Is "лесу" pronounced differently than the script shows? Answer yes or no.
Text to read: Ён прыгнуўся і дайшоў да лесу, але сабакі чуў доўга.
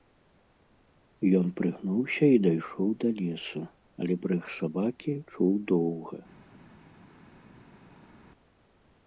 no